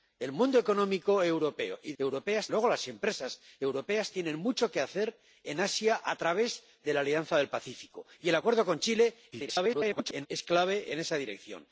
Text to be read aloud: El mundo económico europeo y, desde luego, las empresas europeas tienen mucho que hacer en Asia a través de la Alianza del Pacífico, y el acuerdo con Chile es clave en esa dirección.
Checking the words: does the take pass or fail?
fail